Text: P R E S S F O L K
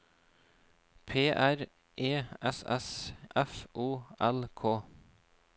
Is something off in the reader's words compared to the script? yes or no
no